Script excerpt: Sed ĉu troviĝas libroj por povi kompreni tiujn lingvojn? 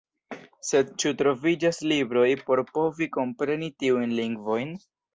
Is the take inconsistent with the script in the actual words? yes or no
no